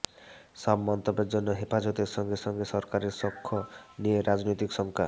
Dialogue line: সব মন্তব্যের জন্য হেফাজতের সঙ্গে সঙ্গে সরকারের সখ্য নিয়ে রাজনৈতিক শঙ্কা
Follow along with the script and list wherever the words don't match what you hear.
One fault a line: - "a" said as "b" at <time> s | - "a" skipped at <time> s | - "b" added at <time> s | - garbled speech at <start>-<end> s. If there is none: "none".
none